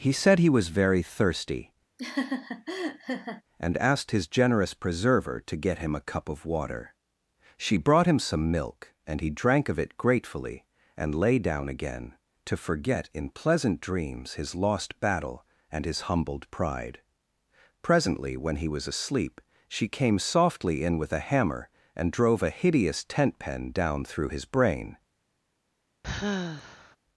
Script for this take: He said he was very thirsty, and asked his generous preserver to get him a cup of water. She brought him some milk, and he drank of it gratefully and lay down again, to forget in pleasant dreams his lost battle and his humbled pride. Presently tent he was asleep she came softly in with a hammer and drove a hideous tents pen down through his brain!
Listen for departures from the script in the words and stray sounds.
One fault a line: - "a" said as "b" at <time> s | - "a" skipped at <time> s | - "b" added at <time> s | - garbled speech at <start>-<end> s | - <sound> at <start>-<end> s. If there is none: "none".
- laugh at 2.0-3.4 s
- "tent" said as "when" at 18.4 s
- "tents" said as "tent" at 23.0 s
- sigh at 26.0-27.0 s